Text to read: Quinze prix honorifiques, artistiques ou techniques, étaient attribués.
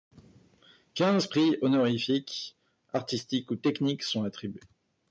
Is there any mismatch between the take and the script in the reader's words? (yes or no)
yes